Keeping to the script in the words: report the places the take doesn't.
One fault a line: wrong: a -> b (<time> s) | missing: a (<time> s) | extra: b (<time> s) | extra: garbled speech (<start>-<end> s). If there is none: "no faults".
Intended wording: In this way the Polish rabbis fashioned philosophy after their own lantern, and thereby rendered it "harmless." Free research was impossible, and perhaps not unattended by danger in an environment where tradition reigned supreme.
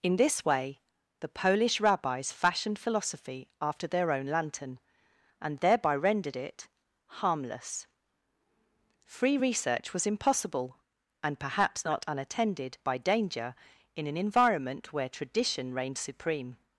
no faults